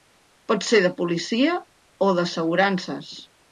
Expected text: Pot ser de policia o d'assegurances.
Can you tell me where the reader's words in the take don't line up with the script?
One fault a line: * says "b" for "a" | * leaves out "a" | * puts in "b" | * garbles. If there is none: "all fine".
all fine